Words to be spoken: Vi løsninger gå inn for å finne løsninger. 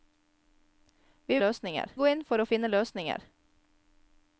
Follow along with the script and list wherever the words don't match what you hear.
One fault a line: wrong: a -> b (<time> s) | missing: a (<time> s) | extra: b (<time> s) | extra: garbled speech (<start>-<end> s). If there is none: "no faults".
no faults